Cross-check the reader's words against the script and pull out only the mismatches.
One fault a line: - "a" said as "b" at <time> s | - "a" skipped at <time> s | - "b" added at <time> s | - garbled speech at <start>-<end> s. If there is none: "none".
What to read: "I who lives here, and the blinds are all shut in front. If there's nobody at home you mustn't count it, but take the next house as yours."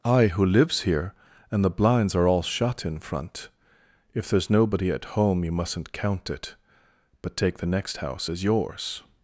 none